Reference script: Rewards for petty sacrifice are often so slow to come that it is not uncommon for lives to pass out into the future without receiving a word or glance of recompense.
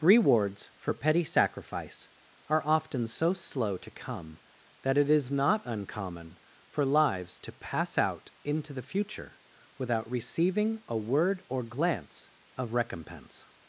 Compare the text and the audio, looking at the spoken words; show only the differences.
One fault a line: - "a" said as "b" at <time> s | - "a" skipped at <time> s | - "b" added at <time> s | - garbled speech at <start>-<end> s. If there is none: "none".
none